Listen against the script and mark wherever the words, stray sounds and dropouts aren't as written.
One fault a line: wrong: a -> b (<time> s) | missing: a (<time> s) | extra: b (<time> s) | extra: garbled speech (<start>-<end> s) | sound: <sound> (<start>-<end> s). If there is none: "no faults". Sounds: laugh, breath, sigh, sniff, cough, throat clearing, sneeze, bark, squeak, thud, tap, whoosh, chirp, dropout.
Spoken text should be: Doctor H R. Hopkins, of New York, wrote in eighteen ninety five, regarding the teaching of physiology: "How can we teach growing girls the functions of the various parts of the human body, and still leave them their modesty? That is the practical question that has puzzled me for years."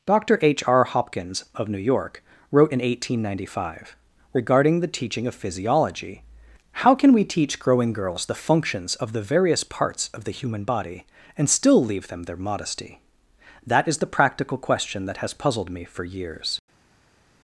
no faults